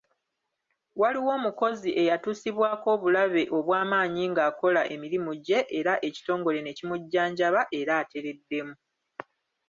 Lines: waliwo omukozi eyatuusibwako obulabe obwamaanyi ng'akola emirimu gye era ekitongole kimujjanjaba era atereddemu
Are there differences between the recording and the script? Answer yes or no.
yes